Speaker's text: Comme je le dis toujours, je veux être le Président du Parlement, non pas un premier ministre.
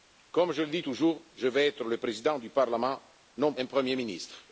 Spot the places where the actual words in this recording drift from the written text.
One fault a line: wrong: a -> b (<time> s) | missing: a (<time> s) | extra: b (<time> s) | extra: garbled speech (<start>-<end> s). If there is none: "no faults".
missing: pas (3.5 s)